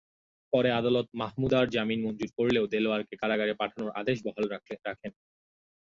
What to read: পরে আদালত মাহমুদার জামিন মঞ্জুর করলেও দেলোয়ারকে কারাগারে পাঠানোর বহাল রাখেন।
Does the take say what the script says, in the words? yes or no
no